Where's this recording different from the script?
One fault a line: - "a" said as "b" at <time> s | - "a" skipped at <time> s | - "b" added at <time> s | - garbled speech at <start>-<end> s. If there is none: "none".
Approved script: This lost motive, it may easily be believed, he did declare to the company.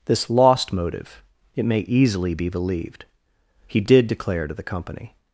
none